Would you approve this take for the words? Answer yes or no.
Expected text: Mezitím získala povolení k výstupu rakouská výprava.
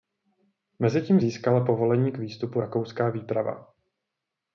yes